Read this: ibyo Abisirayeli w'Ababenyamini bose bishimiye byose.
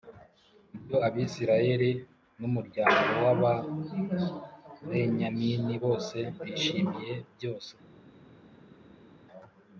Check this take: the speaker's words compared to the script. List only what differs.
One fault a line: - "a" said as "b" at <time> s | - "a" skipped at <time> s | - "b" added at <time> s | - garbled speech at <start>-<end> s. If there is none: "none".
- "n'umuryango" added at 2.4 s